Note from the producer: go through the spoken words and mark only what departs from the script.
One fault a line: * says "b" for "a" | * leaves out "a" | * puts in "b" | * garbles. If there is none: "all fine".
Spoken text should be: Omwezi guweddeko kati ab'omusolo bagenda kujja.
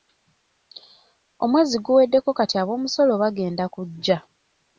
all fine